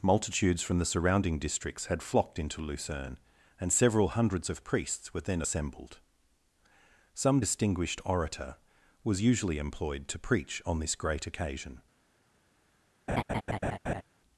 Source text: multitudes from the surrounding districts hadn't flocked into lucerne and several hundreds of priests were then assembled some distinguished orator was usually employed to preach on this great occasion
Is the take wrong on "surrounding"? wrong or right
right